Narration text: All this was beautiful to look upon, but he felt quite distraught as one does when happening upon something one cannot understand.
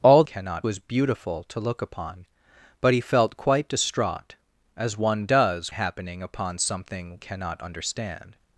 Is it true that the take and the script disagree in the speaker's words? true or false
true